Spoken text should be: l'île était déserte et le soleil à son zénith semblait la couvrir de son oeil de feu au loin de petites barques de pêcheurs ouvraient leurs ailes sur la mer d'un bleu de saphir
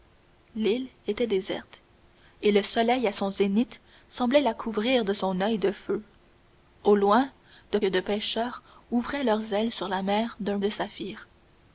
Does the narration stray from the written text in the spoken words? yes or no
yes